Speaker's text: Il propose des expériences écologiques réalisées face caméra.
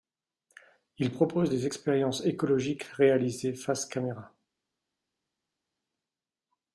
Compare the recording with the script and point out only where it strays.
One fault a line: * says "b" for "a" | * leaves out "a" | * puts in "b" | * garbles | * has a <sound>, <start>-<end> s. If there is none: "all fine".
all fine